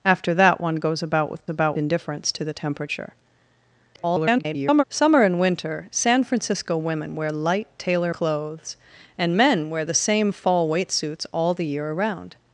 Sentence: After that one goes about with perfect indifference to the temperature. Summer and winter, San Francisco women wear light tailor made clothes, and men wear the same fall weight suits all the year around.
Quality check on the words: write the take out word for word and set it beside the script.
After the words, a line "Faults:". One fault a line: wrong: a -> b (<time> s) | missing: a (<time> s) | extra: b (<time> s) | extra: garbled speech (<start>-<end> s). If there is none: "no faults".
After that one goes about with about indifference to the temperature. [garbled] Summer and winter, San Francisco women wear light tailor clothes, and men wear the same fall weight suits all the year around.
Faults:
wrong: perfect -> about (1.5 s)
extra: garbled speech (3.9-4.8 s)
missing: made (8.1 s)